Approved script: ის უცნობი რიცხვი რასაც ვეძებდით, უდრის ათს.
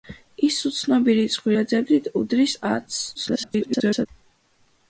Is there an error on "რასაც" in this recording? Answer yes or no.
yes